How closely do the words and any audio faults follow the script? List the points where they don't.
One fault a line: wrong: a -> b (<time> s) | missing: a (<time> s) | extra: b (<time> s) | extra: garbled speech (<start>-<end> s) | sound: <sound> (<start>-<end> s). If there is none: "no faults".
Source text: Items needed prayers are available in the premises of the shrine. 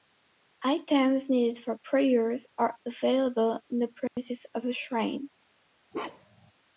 extra: for (1.6 s)
sound: dropout (4.1-4.2 s)
sound: bark (5.9-6.5 s)